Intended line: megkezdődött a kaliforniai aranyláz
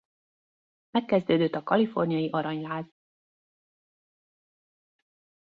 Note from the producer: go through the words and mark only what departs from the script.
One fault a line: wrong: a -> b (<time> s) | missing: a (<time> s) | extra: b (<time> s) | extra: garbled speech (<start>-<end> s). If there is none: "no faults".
no faults